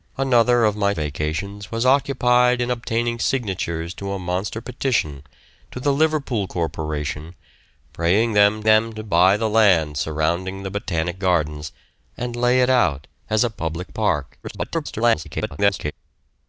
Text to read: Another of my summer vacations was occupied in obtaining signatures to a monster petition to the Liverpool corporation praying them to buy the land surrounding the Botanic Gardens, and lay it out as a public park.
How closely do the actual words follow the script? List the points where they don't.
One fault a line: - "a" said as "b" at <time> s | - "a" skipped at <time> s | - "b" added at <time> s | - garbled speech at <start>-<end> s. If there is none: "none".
- "summer" skipped at 0.9 s
- "them" added at 8.6 s
- garbled speech at 14.4-15.9 s